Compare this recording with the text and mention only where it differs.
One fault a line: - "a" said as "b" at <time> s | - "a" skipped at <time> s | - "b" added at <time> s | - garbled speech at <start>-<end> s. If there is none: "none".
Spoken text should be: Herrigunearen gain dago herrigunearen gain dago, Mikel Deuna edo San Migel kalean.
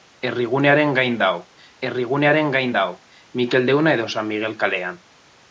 none